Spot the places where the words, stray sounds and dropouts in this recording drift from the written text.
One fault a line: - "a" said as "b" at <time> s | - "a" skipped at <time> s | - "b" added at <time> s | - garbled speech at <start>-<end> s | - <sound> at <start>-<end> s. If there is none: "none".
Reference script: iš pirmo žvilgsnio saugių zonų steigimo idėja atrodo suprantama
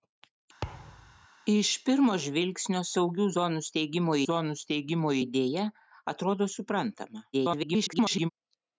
- thud at 0.6-1.3 s
- "zonų steigimo" added at 4.3 s
- garbled speech at 7.3-8.3 s